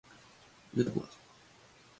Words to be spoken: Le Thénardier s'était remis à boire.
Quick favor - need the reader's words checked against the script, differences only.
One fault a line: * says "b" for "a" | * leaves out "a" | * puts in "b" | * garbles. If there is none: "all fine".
* leaves out "Thénardier s'était remis"